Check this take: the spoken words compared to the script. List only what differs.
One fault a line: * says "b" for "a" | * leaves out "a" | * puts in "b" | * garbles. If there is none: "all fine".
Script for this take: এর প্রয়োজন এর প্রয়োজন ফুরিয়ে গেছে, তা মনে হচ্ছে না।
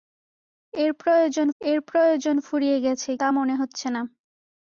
all fine